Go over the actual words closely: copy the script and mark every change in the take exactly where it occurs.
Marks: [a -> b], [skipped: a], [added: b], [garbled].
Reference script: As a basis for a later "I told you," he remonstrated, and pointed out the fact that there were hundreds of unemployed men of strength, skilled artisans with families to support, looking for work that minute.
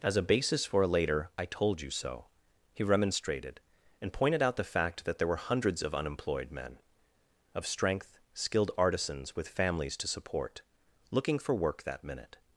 As a basis for a later "I told you," [added: so] he remonstrated, and pointed out the fact that there were hundreds of unemployed men of strength, skilled artisans with families to support, looking for work that minute.